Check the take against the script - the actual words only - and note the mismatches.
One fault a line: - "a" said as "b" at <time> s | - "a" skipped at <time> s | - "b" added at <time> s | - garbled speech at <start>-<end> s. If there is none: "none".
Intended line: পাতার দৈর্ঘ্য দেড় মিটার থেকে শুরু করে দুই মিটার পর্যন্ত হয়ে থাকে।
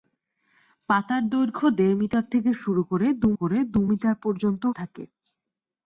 - "করে দুই" added at 3.3 s
- "হয়ে" skipped at 4.6 s